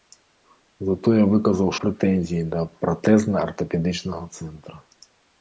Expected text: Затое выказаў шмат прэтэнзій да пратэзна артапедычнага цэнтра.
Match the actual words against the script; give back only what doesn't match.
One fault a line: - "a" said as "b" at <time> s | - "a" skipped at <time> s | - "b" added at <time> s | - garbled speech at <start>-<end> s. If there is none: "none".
- "шмат" skipped at 1.7 s